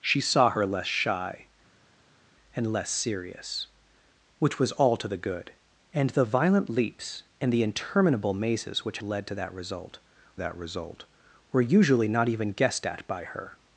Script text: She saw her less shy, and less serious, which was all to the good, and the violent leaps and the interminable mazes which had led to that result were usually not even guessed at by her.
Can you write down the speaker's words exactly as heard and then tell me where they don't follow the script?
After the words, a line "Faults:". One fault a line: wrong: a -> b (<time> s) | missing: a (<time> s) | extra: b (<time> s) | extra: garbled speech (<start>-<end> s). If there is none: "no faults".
She saw her less shy, and less serious, which was all to the good, and the violent leaps and the interminable mazes which led to that result that result were usually not even guessed at by her.
Faults:
missing: had (9.0 s)
extra: that result (10.4 s)